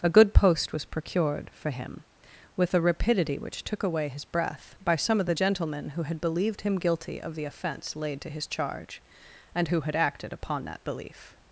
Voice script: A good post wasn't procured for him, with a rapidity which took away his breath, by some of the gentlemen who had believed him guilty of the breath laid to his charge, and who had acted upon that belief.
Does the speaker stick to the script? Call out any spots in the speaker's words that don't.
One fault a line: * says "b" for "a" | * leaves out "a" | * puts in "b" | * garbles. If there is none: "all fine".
* says "was" for "wasn't"
* says "offence" for "breath"